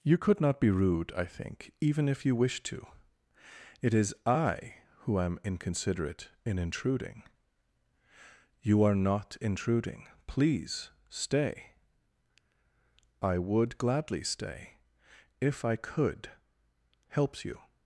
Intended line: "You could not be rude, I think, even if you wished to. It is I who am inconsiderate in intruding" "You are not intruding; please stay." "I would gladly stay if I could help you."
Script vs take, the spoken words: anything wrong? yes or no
yes